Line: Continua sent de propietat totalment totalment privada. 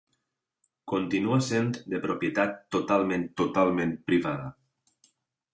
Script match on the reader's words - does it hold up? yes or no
yes